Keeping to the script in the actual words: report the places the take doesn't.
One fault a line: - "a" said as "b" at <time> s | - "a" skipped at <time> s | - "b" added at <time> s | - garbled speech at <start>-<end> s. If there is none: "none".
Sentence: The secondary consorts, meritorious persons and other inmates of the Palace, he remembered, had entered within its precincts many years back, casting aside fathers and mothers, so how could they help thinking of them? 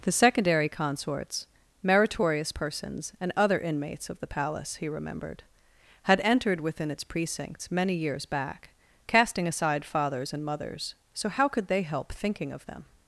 none